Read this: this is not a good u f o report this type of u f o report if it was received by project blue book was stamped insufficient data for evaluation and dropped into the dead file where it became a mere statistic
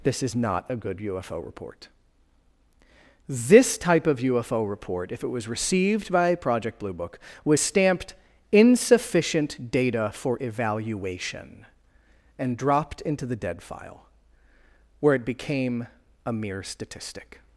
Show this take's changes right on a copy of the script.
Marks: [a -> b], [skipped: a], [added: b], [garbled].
this is not a good u f o report this type of u f o report if it was received by project blue book was stamped insufficient data for evaluation and dropped into the dead file where it became a mere statistic